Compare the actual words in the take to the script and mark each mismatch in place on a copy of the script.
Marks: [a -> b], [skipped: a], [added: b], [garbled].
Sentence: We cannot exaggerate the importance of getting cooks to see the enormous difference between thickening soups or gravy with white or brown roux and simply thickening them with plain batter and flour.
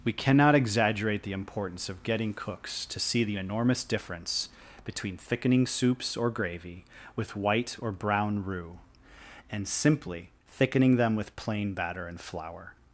We cannot exaggerate the importance of getting cooks to see the enormous difference between thickening soups or gravy with white or brown roux and simply thickening them with plain batter and flour.